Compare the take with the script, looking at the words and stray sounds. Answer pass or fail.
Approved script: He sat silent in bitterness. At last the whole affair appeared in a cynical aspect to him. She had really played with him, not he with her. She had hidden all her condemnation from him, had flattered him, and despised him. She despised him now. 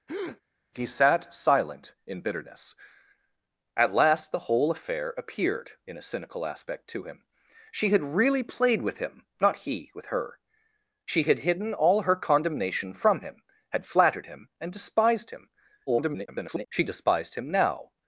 fail